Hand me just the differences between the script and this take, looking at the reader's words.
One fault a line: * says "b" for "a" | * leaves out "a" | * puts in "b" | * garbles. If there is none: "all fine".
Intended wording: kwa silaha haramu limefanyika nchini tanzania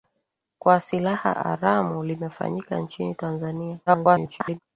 * garbles